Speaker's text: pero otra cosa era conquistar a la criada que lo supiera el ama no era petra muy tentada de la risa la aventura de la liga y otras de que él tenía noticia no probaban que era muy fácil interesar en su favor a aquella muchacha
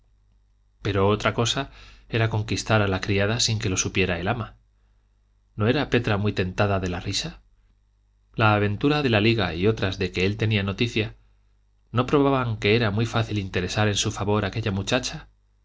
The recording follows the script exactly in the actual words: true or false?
false